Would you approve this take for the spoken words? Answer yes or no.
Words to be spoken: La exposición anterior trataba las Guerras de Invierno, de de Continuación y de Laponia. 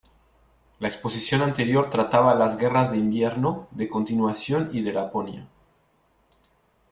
no